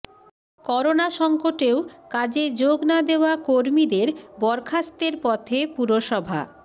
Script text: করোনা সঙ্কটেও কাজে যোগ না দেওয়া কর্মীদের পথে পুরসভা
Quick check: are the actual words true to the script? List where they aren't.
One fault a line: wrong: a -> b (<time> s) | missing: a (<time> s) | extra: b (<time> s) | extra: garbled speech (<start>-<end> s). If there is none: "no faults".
extra: বরখাস্তের (4.4 s)